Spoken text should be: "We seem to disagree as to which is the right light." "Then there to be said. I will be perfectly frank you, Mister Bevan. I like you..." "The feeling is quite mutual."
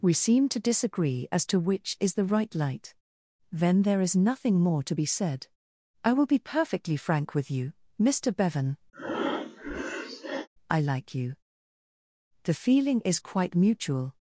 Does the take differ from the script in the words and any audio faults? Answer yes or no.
yes